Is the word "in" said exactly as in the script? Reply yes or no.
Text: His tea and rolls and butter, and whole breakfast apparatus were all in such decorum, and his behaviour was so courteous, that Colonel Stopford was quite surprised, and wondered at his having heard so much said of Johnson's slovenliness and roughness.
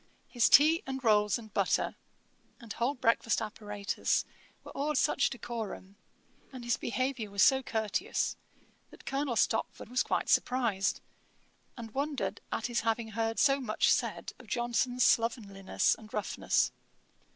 no